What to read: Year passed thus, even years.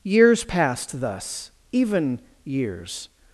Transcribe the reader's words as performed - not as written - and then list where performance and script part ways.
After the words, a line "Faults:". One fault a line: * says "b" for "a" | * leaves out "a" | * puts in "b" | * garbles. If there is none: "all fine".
Years passed thus, even years.
Faults:
* says "Years" for "Year"